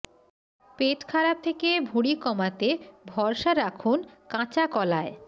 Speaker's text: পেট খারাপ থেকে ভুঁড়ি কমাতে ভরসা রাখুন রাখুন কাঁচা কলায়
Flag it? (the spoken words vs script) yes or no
yes